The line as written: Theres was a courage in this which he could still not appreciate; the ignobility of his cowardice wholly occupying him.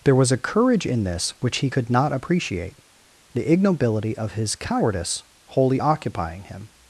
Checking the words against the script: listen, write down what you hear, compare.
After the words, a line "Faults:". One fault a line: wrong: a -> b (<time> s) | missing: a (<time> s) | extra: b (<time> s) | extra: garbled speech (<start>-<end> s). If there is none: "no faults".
There was a courage in this which he could not appreciate; the ignobility of his cowardice wholly occupying him.
Faults:
wrong: Theres -> There (0.0 s)
missing: still (1.9 s)